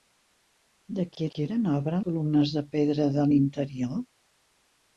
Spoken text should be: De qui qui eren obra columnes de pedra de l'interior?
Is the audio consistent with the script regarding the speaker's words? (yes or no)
yes